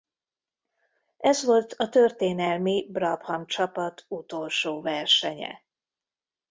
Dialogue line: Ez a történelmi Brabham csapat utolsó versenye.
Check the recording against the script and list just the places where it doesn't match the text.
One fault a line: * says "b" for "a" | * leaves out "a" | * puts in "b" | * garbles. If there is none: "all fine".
* puts in "volt"